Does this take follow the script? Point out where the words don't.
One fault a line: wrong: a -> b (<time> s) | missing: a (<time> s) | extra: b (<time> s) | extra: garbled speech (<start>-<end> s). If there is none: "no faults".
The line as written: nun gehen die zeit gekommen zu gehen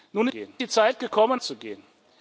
no faults